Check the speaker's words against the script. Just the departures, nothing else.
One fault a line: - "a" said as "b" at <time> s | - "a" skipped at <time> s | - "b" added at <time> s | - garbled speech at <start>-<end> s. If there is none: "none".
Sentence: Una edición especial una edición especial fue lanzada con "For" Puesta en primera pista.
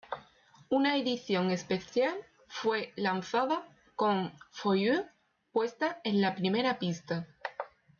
- "una edición especial" skipped at 2.1 s
- "You" added at 4.8 s
- "la" added at 6.2 s